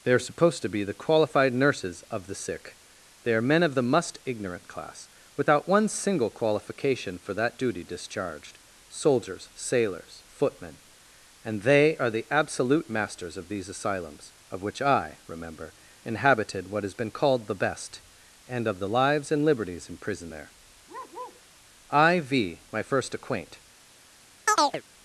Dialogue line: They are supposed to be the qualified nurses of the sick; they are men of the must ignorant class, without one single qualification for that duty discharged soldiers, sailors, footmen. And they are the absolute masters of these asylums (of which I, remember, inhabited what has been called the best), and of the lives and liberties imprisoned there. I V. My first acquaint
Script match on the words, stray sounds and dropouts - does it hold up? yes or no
no